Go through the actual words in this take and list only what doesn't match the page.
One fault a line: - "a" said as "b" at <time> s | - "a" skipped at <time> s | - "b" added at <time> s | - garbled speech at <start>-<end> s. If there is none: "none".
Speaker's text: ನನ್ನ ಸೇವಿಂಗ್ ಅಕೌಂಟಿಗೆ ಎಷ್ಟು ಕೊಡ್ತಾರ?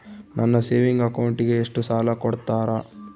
- "ಸಾಲ" added at 1.8 s